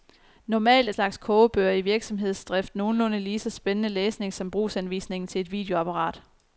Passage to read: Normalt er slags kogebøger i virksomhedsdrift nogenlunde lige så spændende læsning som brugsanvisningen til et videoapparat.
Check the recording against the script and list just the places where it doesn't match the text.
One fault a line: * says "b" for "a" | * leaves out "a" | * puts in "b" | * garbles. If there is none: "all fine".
all fine